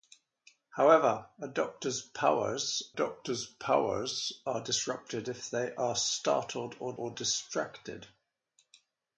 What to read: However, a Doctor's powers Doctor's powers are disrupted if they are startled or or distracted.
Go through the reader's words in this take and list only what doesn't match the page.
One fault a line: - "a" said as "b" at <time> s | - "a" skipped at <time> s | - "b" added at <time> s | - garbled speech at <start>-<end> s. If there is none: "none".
none